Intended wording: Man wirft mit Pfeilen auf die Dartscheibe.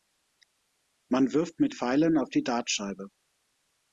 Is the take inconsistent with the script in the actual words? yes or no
no